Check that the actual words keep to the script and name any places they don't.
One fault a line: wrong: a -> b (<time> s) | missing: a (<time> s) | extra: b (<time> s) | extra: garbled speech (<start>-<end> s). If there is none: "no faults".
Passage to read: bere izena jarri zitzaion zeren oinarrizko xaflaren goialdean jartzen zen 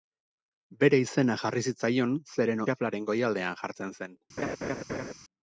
missing: oinarrizko (2.6 s)